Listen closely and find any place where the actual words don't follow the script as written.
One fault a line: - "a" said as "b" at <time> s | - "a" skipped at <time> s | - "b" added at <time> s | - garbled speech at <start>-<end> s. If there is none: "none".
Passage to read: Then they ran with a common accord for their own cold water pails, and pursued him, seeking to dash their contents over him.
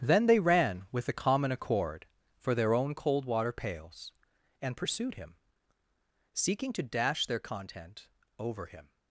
- "contents" said as "content" at 7.4 s